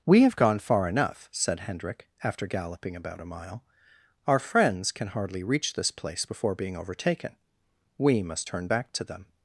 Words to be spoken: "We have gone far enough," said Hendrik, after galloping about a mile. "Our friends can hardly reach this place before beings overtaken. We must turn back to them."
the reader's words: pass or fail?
fail